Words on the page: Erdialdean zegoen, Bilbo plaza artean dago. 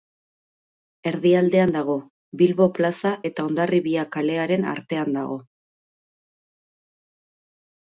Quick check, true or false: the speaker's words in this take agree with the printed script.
false